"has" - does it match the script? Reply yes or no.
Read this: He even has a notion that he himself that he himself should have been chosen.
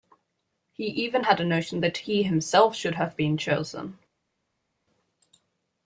no